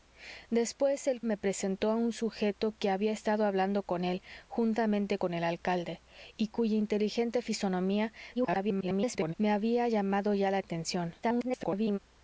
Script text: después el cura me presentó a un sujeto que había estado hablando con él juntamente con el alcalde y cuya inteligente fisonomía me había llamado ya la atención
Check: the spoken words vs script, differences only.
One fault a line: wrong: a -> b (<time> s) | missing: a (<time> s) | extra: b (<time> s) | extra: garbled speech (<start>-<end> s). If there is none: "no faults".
missing: cura (1.2 s)
extra: garbled speech (8.3-9.3 s)
extra: garbled speech (11.2-12.0 s)